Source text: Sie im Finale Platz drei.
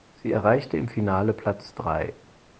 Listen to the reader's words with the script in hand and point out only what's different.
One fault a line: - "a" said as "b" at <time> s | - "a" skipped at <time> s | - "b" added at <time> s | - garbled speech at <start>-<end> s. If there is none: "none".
- "erreichte" added at 0.3 s